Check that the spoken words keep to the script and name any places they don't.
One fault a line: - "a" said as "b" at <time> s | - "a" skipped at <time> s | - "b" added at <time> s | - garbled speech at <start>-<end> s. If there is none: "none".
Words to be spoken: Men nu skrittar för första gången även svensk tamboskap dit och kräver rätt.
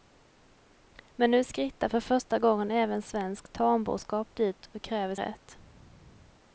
none